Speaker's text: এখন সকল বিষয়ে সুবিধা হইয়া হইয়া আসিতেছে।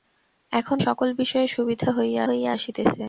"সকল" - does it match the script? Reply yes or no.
yes